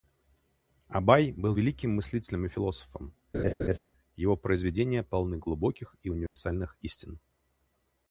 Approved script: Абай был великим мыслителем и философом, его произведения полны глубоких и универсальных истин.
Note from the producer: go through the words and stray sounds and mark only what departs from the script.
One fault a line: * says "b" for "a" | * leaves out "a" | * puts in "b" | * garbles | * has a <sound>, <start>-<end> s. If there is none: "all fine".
* has a laugh, 3.3-3.8 s
* has a dropout, 6.3-6.4 s